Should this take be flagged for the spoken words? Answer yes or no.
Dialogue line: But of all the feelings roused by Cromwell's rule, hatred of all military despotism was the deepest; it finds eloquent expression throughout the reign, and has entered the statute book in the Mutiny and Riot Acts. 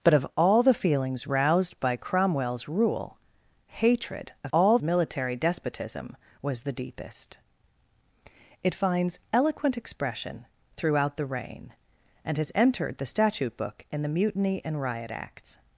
no